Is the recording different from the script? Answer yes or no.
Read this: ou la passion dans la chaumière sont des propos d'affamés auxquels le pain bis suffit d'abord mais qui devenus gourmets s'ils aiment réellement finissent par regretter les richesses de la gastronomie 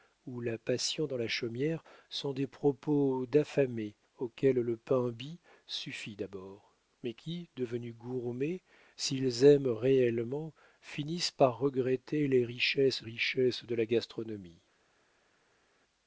yes